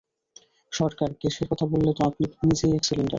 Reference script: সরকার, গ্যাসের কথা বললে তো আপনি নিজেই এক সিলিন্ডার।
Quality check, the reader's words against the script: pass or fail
pass